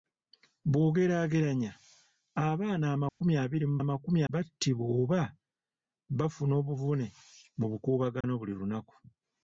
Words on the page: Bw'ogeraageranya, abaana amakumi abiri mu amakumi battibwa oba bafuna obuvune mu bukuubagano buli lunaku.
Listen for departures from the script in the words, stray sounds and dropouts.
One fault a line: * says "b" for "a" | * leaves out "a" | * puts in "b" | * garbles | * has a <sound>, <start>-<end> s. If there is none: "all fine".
* has a dropout, 3.1-3.2 s
* has a dropout, 8.2-8.2 s